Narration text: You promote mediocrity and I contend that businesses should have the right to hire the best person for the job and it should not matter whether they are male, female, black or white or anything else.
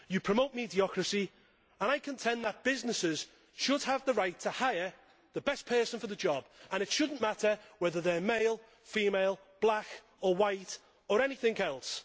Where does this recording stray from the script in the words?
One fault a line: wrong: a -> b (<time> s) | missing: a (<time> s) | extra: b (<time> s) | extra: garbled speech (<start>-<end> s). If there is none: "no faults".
no faults